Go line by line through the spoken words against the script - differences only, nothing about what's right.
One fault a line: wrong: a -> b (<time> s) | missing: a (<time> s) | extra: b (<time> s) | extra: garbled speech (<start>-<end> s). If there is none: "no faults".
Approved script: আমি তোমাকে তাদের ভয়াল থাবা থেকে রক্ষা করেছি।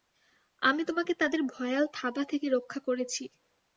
no faults